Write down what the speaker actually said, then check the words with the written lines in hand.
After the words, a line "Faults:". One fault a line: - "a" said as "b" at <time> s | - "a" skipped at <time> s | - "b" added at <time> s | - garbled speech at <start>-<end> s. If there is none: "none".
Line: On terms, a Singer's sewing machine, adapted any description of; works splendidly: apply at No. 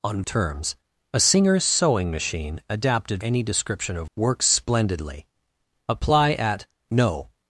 On terms, a Singer's sewing machine, adapted any description of; works splendidly: apply at No.
Faults:
none